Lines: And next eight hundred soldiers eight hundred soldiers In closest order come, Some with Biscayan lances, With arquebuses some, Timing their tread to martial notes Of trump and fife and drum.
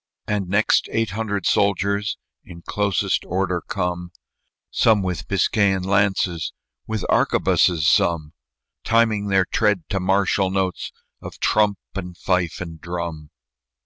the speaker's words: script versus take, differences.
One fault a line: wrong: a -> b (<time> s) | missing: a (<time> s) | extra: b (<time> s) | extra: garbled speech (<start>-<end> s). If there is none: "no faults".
missing: eight hundred soldiers (2.2 s)